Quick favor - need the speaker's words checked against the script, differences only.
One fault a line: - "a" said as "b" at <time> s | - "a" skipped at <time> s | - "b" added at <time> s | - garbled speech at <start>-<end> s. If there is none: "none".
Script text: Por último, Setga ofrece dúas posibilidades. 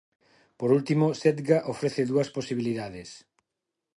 none